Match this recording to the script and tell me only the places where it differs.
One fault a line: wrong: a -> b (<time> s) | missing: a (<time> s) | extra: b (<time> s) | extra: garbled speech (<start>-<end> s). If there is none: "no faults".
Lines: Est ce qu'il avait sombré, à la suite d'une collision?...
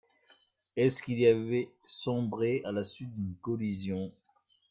no faults